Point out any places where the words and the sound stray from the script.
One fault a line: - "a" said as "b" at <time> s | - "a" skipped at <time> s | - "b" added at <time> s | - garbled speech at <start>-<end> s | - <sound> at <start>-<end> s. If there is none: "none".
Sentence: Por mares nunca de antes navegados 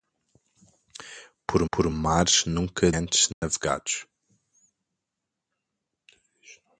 - "por" added at 1.7 s
- "de" skipped at 2.9 s
- dropout at 3.3-3.4 s